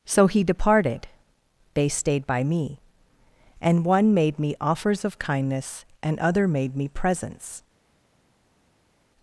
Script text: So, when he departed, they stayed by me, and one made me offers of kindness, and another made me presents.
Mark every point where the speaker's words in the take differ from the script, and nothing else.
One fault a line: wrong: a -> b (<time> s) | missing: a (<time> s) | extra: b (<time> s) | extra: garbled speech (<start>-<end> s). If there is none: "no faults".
missing: when (0.3 s)
wrong: another -> other (6.2 s)